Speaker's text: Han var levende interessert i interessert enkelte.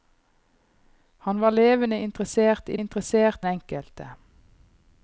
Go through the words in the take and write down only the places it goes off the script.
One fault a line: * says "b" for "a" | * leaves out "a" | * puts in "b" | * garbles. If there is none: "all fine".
all fine